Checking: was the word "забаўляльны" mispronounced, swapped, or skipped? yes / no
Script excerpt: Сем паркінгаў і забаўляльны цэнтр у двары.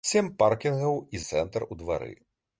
yes